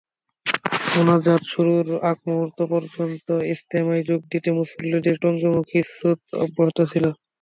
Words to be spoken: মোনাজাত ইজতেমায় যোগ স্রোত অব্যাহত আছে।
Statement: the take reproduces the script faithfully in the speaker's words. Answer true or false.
false